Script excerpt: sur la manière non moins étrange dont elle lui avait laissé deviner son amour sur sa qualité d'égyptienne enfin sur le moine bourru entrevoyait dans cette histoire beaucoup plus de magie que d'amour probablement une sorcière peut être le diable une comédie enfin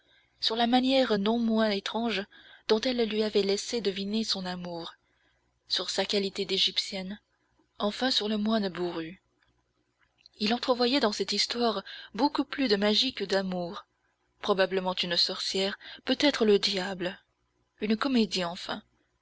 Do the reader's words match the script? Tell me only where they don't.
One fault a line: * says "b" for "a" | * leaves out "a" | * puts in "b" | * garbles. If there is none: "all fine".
* puts in "il"